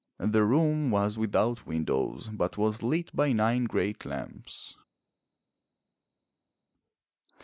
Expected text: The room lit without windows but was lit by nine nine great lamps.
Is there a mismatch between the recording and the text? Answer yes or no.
yes